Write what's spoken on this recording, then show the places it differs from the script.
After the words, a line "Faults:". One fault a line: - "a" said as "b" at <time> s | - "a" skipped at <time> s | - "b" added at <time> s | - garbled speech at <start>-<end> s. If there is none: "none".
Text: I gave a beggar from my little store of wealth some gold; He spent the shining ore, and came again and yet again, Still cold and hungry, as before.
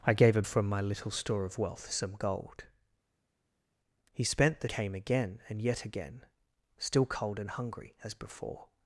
I gave a from my little store of wealth some gold; He spent the came again and yet again, Still cold and hungry, as before.
Faults:
- "beggar" skipped at 0.4 s
- "shining ore and" skipped at 4.7 s